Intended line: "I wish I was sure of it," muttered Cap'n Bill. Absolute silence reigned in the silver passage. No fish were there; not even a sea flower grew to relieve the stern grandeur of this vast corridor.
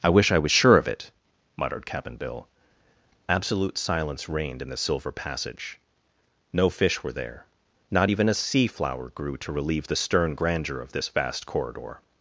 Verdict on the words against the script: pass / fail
pass